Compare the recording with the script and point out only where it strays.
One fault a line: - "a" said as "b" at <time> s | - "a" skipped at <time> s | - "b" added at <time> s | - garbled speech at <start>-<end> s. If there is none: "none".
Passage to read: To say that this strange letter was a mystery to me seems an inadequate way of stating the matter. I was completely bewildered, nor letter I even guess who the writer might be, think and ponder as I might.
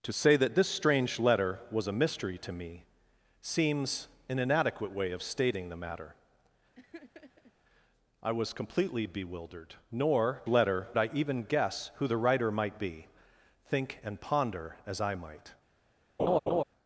none